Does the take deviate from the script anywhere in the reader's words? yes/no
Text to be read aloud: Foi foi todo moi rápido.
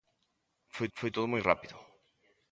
no